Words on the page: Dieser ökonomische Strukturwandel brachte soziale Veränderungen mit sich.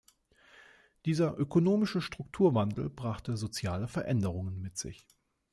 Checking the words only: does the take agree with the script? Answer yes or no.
yes